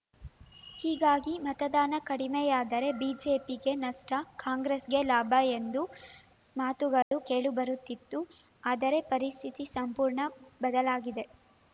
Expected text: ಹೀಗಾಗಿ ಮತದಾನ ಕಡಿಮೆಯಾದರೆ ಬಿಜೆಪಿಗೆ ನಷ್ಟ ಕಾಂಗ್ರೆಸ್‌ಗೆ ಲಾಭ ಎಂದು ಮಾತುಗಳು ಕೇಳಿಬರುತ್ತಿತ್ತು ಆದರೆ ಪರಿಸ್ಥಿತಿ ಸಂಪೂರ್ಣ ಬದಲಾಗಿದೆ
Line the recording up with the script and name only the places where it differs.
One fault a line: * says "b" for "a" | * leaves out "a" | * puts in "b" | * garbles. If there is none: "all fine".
all fine